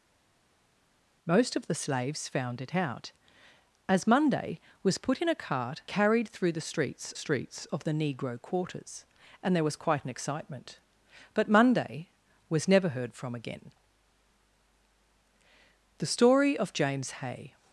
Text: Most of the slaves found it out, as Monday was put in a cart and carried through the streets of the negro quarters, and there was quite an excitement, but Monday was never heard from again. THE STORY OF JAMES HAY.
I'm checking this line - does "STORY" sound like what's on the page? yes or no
yes